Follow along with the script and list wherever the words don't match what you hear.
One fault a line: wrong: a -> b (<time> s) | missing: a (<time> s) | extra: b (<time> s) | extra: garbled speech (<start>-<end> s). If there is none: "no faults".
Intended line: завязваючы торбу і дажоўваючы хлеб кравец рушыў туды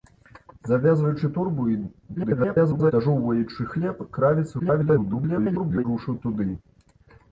extra: garbled speech (2.2-2.9 s)
extra: garbled speech (4.6-5.8 s)